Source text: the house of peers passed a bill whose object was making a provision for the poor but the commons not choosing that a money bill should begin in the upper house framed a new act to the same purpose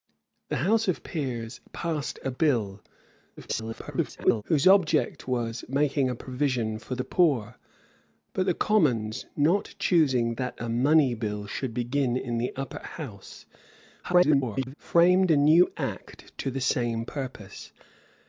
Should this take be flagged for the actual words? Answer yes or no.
yes